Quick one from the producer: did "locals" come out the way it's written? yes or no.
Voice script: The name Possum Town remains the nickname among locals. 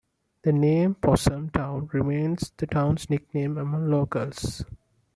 yes